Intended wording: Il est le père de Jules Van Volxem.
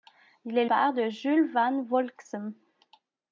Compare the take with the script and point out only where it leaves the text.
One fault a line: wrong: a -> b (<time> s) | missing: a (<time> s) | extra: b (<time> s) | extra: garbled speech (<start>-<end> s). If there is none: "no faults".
missing: le (0.7 s)